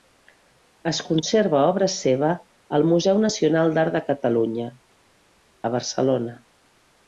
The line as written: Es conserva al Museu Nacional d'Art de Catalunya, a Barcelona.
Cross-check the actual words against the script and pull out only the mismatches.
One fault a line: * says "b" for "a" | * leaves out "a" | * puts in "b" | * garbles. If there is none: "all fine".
* puts in "obra seva"